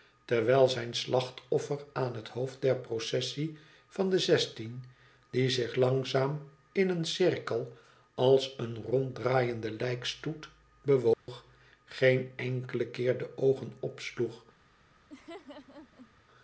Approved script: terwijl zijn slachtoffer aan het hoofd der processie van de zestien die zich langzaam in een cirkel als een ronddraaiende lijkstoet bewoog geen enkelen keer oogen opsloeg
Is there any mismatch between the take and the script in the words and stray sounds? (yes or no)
yes